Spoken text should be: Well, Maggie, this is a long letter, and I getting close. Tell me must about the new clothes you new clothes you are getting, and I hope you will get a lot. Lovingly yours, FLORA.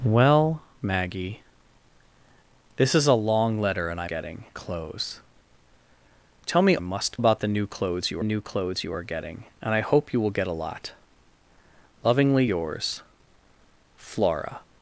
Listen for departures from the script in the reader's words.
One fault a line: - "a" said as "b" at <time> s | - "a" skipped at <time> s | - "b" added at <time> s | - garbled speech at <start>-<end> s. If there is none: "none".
none